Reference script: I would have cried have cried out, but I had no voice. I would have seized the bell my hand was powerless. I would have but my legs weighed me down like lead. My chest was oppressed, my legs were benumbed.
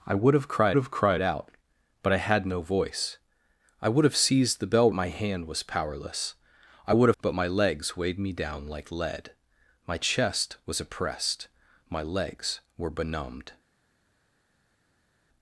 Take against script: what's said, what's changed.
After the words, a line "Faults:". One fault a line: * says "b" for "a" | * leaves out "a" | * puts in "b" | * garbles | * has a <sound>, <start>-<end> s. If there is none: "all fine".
I would have cried have cried out, but I had no voice. I would have seized the bell my hand was powerless. I would have but my legs weighed me down like lead. My chest was oppressed, my legs were benumbed.
Faults:
all fine